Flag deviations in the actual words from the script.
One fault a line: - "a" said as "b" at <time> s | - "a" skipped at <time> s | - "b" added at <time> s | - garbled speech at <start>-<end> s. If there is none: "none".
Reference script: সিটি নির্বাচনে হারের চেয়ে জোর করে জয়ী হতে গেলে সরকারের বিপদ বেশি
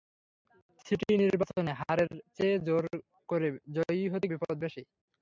- "গেলে সরকারের" skipped at 4.3 s